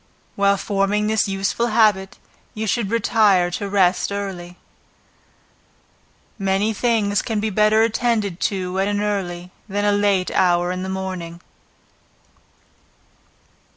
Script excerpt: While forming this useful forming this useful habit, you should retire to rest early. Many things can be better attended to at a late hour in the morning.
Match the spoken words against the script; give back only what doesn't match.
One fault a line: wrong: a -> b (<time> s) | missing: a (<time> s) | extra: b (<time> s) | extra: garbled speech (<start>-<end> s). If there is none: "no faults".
missing: forming this useful (1.7 s)
extra: an early than (8.9 s)